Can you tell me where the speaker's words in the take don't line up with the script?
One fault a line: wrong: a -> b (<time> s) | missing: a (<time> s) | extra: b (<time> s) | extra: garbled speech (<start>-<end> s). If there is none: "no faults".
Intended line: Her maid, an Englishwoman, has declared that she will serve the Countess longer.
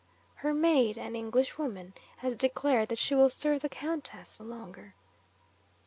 no faults